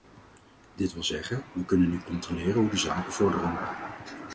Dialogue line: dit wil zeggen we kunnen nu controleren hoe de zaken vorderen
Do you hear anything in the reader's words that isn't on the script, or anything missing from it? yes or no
no